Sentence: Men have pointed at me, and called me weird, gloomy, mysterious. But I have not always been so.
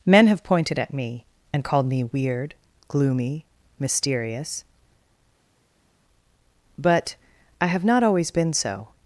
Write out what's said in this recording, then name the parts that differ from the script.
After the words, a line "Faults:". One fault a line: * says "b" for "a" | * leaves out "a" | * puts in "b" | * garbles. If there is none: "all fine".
Men have pointed at me, and called me weird, gloomy, mysterious. But I have not always been so.
Faults:
all fine